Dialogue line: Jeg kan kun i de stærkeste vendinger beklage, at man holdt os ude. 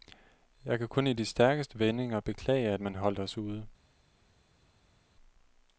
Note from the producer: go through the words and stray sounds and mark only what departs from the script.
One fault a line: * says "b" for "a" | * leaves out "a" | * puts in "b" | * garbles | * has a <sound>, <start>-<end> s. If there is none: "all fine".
all fine